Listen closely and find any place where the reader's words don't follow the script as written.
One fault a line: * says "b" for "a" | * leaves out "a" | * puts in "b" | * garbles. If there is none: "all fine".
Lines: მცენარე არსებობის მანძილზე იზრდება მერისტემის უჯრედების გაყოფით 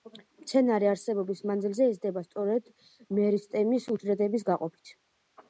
* puts in "სწორედ"